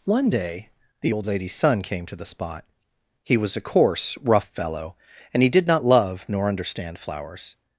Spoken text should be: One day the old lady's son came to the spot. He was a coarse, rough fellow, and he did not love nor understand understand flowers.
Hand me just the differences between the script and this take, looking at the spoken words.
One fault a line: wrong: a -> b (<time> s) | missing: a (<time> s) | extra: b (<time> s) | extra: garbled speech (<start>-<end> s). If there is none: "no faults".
missing: understand (7.0 s)